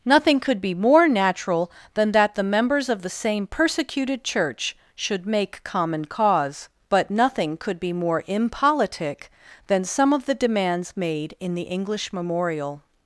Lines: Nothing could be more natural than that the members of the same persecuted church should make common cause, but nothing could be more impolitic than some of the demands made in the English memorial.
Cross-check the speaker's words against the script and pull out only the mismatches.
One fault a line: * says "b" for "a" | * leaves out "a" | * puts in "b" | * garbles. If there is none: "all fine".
all fine